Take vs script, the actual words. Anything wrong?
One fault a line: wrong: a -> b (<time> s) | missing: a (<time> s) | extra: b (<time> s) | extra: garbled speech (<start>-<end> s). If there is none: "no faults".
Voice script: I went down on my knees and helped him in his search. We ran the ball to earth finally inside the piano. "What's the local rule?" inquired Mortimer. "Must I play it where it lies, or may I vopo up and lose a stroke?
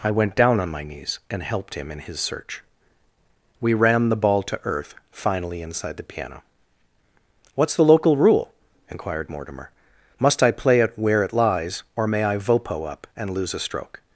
no faults